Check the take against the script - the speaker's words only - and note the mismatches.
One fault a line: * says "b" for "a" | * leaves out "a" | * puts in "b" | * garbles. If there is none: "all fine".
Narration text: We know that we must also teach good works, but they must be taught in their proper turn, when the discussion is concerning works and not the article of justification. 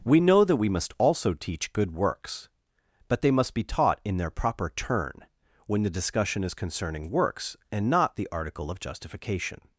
all fine